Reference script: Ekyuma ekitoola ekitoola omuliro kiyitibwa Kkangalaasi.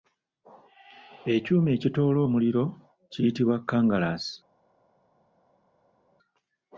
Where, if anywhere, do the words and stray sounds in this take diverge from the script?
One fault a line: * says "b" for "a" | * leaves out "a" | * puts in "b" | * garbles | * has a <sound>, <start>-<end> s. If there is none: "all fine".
* leaves out "ekitoola"